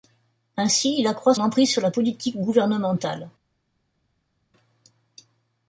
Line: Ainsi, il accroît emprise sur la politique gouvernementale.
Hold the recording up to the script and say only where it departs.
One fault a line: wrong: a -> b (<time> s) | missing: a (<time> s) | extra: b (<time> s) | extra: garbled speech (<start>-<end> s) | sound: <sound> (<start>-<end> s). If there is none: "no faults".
no faults